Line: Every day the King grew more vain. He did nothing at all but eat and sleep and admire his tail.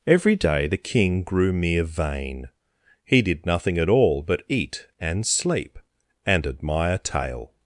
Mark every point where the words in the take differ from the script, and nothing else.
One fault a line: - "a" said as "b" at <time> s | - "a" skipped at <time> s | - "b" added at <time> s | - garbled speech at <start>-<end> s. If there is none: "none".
- "more" said as "mere" at 1.5 s
- "his" skipped at 7.0 s